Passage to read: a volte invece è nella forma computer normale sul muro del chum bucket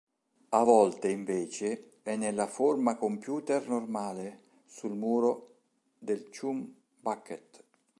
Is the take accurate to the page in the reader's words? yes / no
yes